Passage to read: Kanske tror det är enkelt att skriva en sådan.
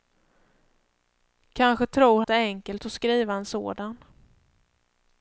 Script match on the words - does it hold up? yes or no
yes